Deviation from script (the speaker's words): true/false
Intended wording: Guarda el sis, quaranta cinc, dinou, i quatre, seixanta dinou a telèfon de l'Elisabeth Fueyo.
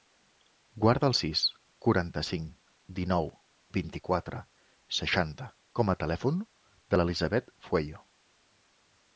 true